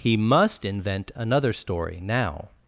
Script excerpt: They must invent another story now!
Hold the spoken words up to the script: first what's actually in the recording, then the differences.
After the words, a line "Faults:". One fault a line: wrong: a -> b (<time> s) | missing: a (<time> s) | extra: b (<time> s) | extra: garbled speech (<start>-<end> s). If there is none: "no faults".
He must invent another story now!
Faults:
wrong: They -> He (0.0 s)